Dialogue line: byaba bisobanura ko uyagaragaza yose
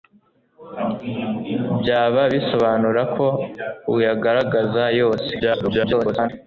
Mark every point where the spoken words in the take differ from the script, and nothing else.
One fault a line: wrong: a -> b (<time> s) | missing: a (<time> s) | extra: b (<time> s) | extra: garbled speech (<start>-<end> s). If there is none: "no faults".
extra: garbled speech (5.4-6.3 s)